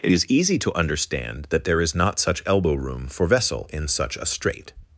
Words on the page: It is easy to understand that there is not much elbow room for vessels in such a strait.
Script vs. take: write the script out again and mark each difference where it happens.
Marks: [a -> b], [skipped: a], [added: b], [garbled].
It is easy to understand that there is not [much -> such] elbow room for [vessels -> vessel] in such a strait.